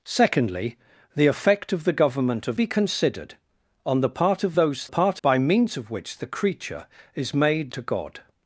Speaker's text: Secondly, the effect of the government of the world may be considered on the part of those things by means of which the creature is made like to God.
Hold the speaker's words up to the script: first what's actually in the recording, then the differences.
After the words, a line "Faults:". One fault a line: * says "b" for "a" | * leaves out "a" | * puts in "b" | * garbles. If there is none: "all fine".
Secondly, the effect of the government of be considered on the part of those part by means of which the creature is made to God.
Faults:
* leaves out "the world may"
* says "part" for "things"
* leaves out "like"